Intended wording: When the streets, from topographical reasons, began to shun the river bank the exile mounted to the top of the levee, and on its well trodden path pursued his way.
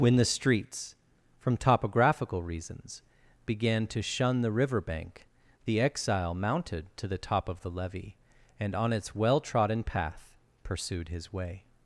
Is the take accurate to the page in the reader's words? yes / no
yes